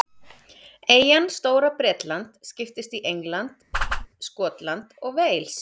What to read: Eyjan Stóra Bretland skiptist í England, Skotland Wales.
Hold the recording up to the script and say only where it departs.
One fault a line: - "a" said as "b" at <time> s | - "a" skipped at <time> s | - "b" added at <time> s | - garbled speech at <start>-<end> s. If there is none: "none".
- "og" added at 5.0 s